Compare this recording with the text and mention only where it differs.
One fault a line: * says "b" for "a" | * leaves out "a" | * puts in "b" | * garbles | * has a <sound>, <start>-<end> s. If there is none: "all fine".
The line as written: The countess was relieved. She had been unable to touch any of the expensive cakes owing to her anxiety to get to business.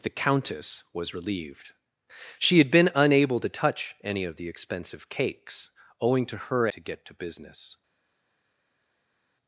* leaves out "anxiety"